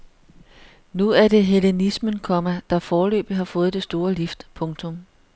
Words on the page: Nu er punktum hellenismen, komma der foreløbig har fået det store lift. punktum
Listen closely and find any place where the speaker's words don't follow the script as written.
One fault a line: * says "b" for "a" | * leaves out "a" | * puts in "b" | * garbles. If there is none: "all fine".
* says "det" for "punktum"